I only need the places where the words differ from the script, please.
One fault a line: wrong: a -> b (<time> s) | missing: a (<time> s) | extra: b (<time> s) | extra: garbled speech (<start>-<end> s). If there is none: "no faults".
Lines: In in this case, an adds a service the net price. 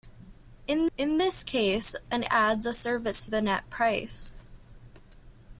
no faults